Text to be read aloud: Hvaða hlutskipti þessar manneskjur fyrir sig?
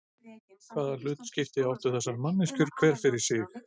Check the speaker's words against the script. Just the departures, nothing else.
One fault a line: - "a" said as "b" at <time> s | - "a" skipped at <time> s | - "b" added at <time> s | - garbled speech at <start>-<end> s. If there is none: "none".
- "áttu" added at 1.8 s
- "hver" added at 2.8 s